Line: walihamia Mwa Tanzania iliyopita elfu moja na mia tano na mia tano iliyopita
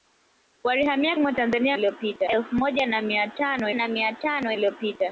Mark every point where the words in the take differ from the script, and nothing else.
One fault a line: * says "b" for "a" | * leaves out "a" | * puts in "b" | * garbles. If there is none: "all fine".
all fine